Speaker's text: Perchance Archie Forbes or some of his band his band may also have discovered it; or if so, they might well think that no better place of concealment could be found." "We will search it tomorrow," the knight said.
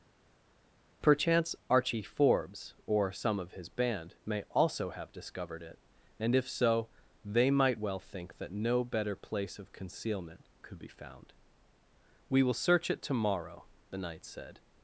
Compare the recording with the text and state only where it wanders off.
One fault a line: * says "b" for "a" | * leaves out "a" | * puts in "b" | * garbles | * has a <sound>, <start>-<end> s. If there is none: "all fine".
* leaves out "his band"
* says "and" for "or"